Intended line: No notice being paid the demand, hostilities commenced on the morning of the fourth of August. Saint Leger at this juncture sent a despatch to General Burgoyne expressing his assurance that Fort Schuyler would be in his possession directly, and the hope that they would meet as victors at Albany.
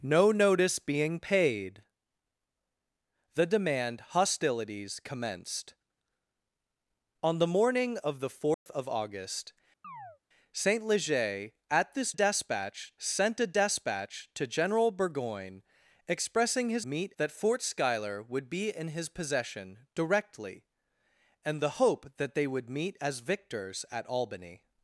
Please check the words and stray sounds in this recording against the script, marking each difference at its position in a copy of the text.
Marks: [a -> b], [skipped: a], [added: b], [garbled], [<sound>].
No notice being paid the demand, hostilities commenced on the morning of the fourth [dropout] of August. [chirp] Saint Leger at this [juncture -> despatch] sent a despatch to General Burgoyne expressing his [assurance -> meet] that Fort Schuyler would be in his possession directly, and the hope that they would meet as victors at Albany.